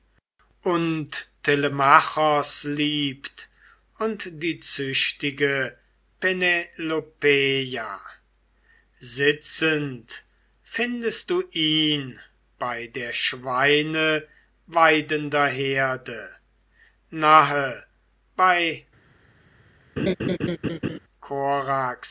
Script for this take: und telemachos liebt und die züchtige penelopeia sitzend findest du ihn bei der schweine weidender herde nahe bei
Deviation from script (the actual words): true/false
false